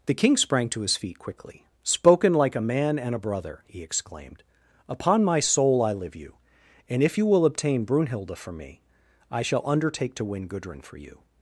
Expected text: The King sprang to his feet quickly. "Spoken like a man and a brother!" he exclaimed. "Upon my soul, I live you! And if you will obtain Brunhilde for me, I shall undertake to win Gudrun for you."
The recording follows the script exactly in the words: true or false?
true